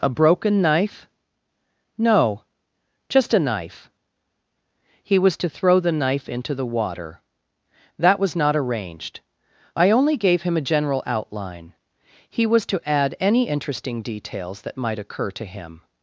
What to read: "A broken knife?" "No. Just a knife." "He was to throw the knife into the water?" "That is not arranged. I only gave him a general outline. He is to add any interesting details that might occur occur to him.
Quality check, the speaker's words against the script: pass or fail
fail